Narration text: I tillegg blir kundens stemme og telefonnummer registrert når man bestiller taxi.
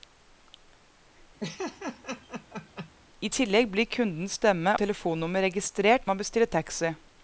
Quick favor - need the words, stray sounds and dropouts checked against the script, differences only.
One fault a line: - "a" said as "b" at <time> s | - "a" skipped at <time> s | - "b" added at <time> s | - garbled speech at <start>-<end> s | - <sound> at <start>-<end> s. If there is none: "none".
- laugh at 1.4-2.9 s
- "og" skipped at 4.7 s
- "når" skipped at 6.1 s